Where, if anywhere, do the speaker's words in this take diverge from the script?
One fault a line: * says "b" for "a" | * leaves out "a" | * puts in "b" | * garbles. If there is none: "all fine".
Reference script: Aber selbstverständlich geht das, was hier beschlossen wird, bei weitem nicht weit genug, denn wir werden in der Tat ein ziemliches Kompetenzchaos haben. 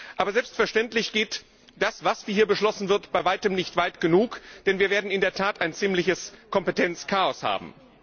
all fine